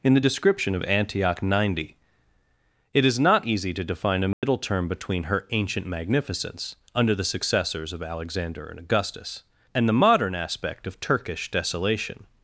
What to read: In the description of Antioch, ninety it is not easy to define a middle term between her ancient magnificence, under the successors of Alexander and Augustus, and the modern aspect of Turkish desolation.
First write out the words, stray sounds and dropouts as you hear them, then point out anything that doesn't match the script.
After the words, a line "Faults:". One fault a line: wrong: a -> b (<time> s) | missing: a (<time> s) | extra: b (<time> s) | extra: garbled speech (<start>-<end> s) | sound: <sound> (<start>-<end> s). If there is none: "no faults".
In the description of Antioch, ninety it is not easy to define a middle term between her ancient magnificence, under the successors of Alexander and Augustus, and the modern aspect of Turkish desolation.
Faults:
sound: dropout (4.3-4.4 s)